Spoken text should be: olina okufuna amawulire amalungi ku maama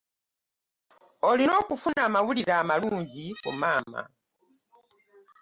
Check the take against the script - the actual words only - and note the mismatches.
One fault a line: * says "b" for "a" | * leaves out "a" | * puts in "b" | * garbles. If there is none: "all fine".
all fine